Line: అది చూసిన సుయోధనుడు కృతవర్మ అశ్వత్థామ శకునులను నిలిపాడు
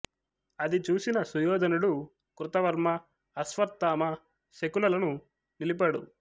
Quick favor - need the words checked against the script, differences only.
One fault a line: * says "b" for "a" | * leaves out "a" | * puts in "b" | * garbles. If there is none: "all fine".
all fine